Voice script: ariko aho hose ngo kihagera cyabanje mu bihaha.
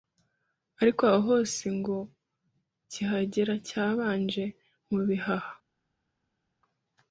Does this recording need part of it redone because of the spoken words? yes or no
no